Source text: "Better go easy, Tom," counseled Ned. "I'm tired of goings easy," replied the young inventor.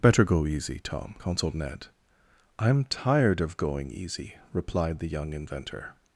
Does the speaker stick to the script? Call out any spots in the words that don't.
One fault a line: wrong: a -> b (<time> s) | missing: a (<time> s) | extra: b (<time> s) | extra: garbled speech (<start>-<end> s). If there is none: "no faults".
wrong: goings -> going (3.6 s)